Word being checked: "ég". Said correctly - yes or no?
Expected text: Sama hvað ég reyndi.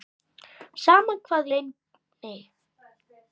no